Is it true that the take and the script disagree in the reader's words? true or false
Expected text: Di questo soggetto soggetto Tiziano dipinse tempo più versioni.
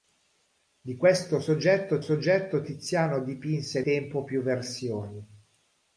false